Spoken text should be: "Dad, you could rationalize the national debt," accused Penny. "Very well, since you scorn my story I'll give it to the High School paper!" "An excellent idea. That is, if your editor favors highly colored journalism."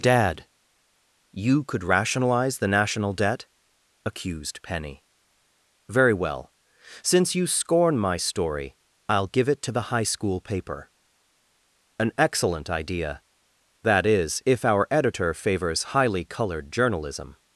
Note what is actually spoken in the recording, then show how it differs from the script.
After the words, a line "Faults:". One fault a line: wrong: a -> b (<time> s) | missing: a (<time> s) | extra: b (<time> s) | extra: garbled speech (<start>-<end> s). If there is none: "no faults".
"Dad, you could rationalize the national debt," accused Penny. "Very well, since you scorn my story I'll give it to the High School paper!" "An excellent idea. That is, if our editor favors highly colored journalism."
Faults:
wrong: your -> our (14.6 s)